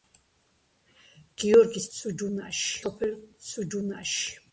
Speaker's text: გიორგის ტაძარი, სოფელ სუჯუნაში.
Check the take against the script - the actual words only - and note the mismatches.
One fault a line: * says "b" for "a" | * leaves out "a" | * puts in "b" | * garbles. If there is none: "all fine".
* says "სუჯუნაში" for "ტაძარი"